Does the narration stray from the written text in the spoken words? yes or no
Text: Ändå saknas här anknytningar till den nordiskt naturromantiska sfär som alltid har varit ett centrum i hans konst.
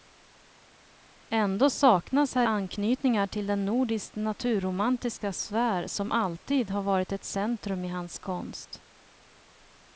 no